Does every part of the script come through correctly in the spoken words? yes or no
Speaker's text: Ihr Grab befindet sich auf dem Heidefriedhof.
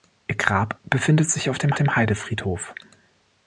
no